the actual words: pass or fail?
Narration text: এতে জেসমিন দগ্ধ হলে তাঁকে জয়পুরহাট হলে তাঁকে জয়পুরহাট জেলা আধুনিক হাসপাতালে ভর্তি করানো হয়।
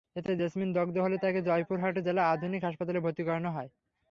fail